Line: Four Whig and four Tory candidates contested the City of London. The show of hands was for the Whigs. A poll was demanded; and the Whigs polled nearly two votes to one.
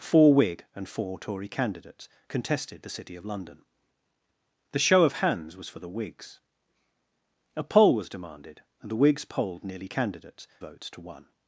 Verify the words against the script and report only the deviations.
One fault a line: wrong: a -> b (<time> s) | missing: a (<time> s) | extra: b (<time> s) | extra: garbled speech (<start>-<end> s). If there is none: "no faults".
wrong: two -> candidates (9.9 s)